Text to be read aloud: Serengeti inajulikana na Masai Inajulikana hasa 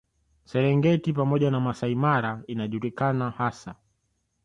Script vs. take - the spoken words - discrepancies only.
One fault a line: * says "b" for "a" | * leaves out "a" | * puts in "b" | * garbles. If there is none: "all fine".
* says "pamoja" for "inajulikana"
* puts in "Mara"